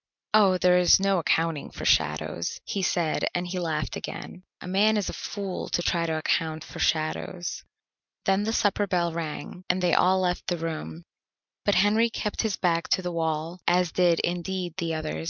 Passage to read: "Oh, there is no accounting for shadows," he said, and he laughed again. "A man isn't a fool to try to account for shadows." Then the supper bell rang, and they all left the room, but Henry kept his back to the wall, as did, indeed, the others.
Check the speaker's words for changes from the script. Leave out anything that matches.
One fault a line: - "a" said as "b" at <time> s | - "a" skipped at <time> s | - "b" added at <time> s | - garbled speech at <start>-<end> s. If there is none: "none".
- "isn't" said as "is" at 5.0 s